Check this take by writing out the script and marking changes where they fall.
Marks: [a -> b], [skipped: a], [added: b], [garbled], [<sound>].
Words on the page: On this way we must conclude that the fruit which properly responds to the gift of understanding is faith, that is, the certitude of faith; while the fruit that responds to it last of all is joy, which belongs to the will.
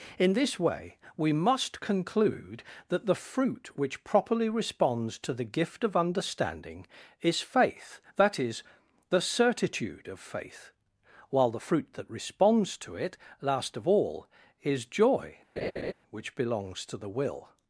[On -> In] this way we must conclude that the fruit which properly responds to the gift of understanding is faith, that is, the certitude of faith; while the fruit that responds to it last of all is joy, [laugh] which belongs to the will.